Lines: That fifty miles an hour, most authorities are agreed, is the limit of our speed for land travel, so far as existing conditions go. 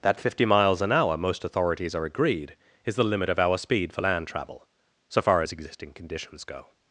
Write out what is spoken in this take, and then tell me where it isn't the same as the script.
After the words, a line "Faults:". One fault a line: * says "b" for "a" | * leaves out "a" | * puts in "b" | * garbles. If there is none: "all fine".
That fifty miles an hour, most authorities are agreed, is the limit of our speed for land travel, so far as existing conditions go.
Faults:
all fine